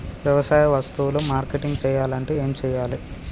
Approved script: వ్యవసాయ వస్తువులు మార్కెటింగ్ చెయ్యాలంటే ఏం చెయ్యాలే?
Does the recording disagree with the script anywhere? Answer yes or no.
no